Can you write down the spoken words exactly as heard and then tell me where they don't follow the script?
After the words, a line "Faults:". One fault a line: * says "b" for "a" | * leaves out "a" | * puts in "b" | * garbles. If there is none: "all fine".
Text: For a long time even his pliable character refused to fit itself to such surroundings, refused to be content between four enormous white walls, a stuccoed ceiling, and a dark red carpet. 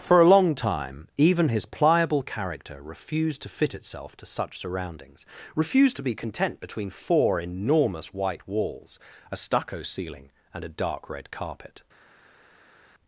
For a long time even his pliable character refused to fit itself to such surroundings, refused to be content between four enormous white walls, a stucco ceiling, and a dark red carpet.
Faults:
* says "stucco" for "stuccoed"